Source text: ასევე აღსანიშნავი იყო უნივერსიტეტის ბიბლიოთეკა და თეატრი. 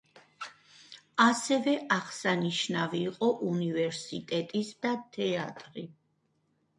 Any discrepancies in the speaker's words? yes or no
yes